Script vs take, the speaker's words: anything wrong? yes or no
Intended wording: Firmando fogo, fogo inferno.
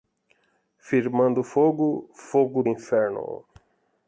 no